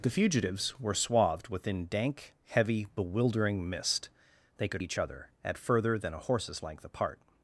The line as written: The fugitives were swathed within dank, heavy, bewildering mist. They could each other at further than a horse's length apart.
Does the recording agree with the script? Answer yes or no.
yes